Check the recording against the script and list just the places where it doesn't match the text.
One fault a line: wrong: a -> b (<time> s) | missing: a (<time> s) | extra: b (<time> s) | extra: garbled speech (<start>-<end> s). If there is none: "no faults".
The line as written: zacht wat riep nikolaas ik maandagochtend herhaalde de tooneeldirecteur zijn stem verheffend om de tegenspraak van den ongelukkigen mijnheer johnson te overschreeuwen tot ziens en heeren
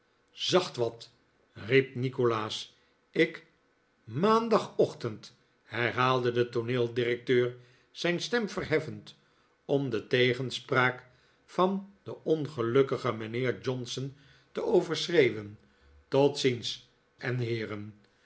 no faults